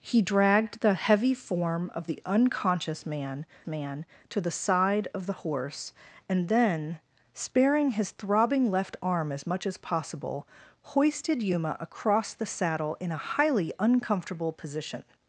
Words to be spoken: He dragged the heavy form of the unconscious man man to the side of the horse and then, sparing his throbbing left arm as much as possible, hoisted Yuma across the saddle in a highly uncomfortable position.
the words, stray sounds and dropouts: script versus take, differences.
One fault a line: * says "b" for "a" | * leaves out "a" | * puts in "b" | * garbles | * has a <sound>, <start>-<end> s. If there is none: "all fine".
all fine